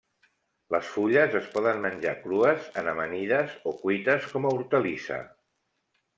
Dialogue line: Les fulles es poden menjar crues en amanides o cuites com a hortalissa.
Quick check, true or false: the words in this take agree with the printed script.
true